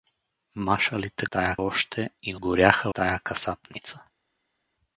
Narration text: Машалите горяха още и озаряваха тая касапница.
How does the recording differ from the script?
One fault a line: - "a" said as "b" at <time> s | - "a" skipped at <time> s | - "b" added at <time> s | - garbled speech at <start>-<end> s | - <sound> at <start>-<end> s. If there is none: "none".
- "горяха" said as "тая" at 1.3 s
- "озаряваха" said as "горяха" at 2.3 s